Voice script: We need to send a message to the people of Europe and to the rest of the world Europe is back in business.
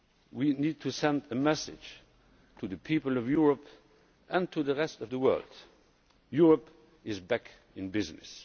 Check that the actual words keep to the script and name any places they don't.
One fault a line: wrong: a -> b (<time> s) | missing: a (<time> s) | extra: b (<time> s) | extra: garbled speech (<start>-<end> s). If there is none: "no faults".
no faults